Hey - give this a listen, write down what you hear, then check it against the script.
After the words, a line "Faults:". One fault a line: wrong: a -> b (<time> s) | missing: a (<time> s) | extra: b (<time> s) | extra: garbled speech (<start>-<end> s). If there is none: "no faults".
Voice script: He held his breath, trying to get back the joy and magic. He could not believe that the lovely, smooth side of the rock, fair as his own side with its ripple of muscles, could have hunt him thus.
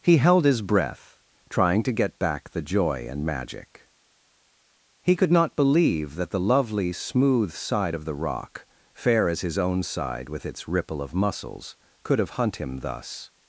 He held his breath, trying to get back the joy and magic. He could not believe that the lovely, smooth side of the rock, fair as his own side with its ripple of muscles, could have hunt him thus.
Faults:
no faults